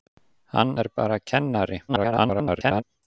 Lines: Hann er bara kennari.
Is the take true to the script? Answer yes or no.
no